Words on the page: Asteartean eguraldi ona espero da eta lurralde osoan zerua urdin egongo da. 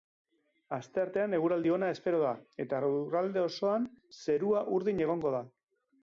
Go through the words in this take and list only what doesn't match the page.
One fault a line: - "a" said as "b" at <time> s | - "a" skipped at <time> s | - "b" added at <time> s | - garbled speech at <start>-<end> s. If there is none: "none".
none